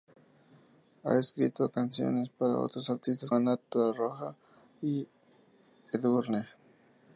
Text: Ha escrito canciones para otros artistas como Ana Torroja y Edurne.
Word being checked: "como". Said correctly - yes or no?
no